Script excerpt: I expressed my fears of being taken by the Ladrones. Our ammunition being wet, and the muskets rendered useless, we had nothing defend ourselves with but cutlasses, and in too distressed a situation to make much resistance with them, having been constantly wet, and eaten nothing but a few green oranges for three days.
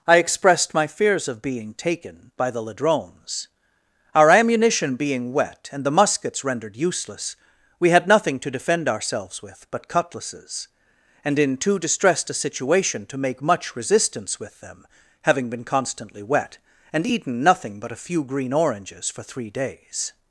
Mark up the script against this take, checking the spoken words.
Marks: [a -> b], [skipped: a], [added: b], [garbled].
I expressed my fears of being taken by the Ladrones. Our ammunition being wet, and the muskets rendered useless, we had nothing [added: to] defend ourselves with but cutlasses, and in too distressed a situation to make much resistance with them, having been constantly wet, and eaten nothing but a few green oranges for three days.